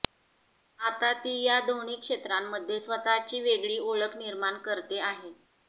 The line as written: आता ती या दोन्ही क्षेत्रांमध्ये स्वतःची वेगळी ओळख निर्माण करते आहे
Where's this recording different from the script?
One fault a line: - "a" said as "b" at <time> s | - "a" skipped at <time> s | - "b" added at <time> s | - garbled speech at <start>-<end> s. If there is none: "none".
none